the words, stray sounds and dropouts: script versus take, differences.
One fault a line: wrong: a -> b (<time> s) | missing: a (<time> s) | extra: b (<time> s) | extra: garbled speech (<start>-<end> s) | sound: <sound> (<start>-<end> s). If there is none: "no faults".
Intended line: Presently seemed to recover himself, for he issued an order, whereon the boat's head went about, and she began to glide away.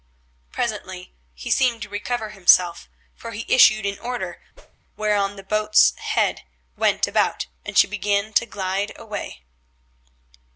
extra: he (1.4 s)
sound: whoosh (4.5-4.8 s)